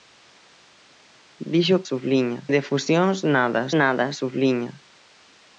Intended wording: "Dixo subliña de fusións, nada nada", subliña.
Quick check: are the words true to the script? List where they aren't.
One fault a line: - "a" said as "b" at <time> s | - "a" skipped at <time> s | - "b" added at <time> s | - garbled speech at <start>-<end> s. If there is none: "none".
none